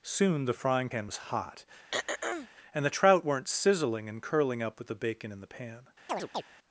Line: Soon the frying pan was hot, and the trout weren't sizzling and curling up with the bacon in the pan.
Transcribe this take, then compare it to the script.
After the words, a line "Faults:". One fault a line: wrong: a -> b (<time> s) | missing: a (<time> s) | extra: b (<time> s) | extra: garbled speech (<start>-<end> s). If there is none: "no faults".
Soon the frying pan was hot, and the trout weren't sizzling and curling up with the bacon in the pan.
Faults:
no faults